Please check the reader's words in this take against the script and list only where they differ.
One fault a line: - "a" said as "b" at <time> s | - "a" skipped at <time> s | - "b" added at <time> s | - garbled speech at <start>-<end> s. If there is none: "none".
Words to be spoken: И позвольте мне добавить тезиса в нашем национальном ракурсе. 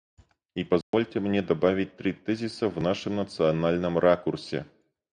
- "три" added at 2.0 s